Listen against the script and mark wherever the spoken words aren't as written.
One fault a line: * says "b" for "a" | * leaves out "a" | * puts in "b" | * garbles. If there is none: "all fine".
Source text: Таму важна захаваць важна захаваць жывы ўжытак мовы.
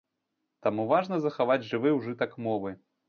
* leaves out "важна захаваць"